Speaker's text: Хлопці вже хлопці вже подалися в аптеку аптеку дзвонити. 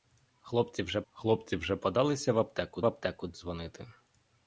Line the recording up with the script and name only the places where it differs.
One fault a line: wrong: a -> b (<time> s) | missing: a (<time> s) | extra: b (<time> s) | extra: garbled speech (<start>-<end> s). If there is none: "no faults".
no faults